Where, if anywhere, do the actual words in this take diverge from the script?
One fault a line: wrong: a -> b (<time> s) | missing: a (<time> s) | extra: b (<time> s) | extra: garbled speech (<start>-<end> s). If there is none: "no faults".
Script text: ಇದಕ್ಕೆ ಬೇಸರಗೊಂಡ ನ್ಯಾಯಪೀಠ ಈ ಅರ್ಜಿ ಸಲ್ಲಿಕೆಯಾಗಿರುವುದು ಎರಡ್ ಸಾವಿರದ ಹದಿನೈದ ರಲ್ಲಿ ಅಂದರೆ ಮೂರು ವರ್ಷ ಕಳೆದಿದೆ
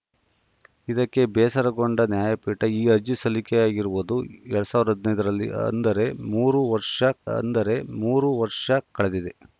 extra: ಅಂದರೆ ಮೂರು ವರ್ಷ (7.3 s)